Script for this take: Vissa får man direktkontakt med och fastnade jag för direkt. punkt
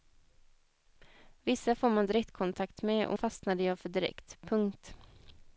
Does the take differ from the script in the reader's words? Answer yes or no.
no